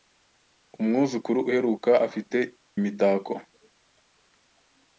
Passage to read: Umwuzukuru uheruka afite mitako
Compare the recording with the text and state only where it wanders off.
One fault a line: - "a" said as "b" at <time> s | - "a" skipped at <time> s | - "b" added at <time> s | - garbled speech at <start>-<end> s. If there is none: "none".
none